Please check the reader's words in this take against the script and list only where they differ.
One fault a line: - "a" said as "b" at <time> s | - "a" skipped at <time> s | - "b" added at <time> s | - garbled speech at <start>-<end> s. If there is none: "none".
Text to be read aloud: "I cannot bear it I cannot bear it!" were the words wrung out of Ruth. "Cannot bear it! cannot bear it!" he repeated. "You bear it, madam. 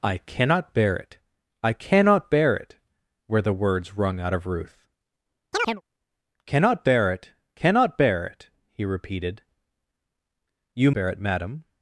none